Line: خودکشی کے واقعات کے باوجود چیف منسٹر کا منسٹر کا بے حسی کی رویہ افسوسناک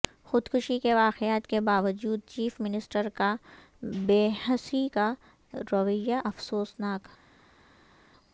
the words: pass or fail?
fail